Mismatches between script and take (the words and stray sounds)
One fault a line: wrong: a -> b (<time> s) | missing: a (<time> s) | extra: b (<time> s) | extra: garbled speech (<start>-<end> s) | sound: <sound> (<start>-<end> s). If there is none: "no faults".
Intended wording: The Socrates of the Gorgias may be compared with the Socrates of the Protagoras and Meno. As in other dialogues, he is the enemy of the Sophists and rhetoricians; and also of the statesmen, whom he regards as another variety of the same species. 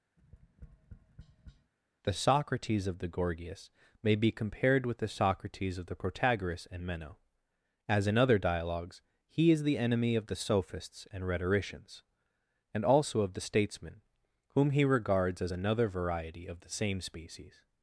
sound: tap (0.2-1.7 s)